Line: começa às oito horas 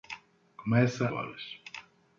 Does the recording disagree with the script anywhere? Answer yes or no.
yes